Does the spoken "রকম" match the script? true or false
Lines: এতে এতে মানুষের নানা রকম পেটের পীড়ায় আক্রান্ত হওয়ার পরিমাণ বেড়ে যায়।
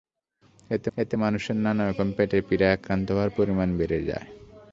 true